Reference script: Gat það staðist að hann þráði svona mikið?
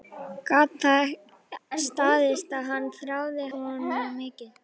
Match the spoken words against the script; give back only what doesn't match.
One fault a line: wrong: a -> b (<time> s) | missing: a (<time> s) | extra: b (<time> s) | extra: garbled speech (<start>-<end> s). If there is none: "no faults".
no faults